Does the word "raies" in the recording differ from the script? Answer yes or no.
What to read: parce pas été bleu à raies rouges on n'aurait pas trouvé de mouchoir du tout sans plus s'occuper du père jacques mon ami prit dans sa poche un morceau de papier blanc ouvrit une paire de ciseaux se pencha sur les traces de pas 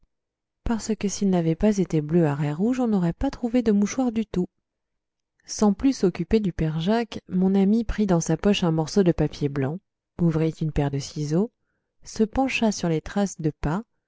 no